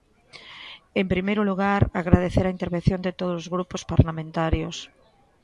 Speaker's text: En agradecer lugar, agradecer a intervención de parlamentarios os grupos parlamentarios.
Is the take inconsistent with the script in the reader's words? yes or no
yes